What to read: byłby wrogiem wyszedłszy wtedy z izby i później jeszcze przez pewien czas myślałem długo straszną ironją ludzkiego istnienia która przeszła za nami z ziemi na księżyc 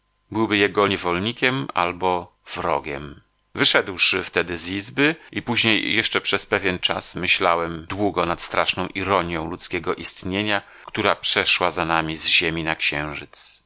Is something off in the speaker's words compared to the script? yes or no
yes